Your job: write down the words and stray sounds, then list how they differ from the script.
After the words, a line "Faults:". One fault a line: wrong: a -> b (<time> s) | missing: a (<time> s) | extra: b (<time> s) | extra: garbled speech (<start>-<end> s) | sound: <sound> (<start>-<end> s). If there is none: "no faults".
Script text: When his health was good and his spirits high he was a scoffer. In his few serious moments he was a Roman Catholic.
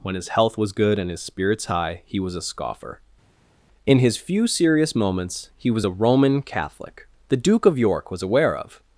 When his health was good and his spirits high he was a scoffer. In his few serious moments he was a Roman Catholic. The Duke of York was aware of
Faults:
extra: The Duke of York was aware of (7.3 s)